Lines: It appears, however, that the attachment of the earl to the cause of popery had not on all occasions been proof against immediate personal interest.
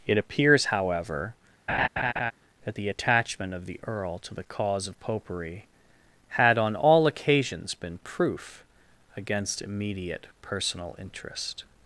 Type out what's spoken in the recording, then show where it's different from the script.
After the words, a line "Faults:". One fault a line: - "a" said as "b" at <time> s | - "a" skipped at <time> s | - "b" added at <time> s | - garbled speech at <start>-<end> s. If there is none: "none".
It appears, however, that the attachment of the earl to the cause of popery had on all occasions been proof against immediate personal interest.
Faults:
- "not" skipped at 6.6 s